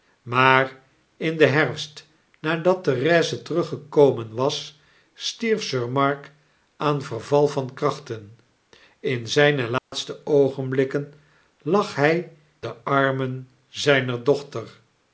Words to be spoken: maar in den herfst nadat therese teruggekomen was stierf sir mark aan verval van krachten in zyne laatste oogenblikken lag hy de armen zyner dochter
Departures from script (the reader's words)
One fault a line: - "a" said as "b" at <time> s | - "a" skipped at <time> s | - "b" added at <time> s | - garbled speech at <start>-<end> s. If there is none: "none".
none